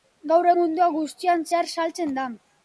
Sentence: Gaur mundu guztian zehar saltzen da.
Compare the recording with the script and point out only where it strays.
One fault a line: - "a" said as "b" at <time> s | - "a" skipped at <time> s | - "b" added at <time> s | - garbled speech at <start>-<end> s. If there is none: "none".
none